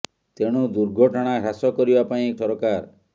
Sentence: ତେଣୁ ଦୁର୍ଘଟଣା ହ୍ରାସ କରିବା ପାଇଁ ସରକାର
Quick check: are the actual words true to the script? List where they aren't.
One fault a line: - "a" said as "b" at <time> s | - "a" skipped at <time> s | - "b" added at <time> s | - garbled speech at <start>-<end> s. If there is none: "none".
none